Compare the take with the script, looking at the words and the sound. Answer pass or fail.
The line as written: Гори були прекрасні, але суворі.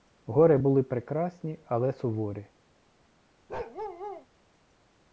fail